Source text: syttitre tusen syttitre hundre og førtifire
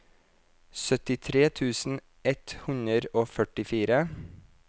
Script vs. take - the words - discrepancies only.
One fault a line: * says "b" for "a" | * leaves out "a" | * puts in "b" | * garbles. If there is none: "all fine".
* says "ett" for "syttitre"